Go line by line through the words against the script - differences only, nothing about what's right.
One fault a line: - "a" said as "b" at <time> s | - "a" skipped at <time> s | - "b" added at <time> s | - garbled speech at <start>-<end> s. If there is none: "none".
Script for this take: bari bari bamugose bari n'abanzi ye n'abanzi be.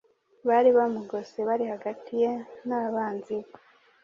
- "bari" skipped at 0.7 s
- "n'abanzi" said as "hagati" at 1.7 s